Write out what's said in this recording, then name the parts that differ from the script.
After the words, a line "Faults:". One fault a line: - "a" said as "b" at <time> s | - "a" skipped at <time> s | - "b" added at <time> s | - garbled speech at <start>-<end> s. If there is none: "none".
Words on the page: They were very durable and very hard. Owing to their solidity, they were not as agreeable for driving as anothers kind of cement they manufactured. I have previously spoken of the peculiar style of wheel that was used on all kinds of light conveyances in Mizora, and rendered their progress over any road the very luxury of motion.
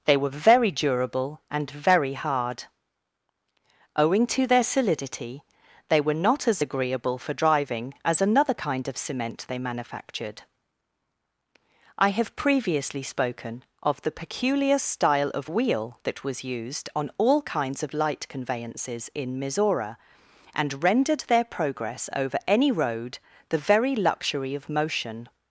They were very durable and very hard. Owing to their solidity, they were not as agreeable for driving as another kind of cement they manufactured. I have previously spoken of the peculiar style of wheel that was used on all kinds of light conveyances in Mizora, and rendered their progress over any road the very luxury of motion.
Faults:
- "anothers" said as "another" at 8.2 s